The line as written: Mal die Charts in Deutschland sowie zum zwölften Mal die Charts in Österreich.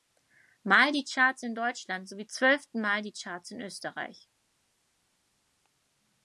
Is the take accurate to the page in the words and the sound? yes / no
no